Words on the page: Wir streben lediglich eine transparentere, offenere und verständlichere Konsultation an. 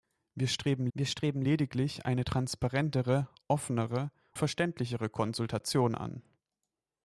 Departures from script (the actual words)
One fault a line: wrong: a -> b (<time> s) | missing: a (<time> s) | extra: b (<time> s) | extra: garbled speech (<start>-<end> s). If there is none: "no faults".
extra: wir streben (0.9 s)
missing: und (4.1 s)